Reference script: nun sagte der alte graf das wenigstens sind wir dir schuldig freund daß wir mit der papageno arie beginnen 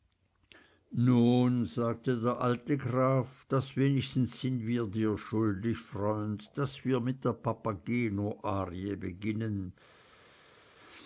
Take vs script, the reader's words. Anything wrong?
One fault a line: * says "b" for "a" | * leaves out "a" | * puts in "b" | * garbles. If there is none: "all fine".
all fine